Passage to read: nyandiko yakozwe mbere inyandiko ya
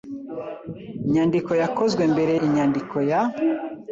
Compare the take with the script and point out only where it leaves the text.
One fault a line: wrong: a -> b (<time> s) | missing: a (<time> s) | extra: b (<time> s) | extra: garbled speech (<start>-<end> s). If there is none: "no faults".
no faults